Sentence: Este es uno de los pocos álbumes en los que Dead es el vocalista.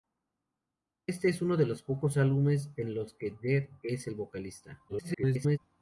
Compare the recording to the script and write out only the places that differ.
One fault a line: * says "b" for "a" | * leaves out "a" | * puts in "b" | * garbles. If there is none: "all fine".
* garbles